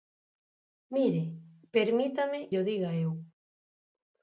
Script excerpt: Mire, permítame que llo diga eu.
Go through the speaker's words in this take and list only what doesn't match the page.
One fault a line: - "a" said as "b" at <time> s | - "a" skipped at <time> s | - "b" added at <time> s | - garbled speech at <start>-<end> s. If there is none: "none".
- "que" skipped at 2.4 s